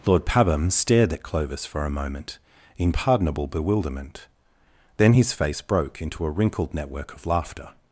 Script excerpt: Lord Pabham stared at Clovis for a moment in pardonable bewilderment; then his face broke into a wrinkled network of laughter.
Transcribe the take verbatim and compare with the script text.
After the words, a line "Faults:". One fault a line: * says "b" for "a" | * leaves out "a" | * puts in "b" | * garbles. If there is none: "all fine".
Lord Pabham stared at Clovis for a moment in pardonable bewilderment; then his face broke into a wrinkled network of laughter.
Faults:
all fine